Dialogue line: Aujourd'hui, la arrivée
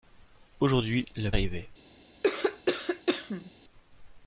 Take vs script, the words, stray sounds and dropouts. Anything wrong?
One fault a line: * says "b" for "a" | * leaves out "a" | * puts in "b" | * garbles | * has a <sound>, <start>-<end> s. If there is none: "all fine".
* has a cough, 2.2-3.5 s